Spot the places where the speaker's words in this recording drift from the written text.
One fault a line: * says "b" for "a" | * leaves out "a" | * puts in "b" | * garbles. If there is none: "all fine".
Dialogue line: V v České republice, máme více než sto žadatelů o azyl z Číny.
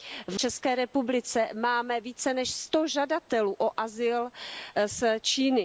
all fine